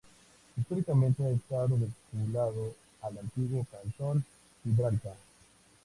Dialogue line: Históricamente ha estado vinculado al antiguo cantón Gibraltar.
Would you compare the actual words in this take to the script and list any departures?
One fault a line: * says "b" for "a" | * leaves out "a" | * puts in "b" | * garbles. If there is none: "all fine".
all fine